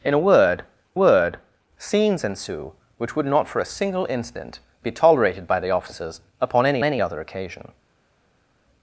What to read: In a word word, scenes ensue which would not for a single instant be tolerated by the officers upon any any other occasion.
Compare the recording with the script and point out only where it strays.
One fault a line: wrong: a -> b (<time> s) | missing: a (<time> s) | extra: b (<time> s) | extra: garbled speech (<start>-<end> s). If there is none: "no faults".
no faults